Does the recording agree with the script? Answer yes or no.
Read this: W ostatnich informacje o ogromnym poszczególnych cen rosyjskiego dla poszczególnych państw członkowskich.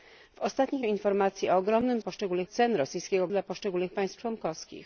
yes